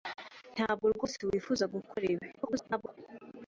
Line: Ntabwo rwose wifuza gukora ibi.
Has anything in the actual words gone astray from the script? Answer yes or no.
yes